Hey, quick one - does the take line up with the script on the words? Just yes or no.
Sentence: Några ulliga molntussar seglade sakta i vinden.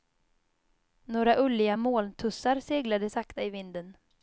yes